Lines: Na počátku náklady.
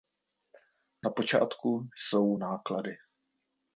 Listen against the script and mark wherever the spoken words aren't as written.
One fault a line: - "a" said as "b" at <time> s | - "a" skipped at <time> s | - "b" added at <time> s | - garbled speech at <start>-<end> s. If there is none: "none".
- "jsou" added at 1.9 s